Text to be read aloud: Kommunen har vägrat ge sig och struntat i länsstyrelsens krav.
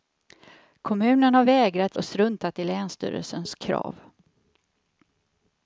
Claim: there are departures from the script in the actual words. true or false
true